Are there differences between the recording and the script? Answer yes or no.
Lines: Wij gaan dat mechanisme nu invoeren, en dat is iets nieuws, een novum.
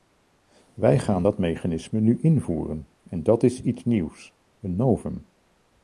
no